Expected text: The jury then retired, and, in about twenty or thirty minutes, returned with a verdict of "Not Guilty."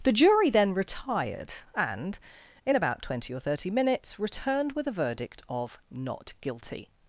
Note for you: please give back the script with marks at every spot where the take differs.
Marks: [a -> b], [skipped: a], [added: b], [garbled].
The jury then retired, and, in about twenty or thirty minutes, returned with a verdict of "Not Guilty."